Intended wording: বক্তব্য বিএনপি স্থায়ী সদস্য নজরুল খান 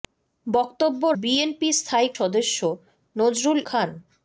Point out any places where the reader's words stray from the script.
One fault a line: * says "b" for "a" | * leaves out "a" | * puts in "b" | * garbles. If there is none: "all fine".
all fine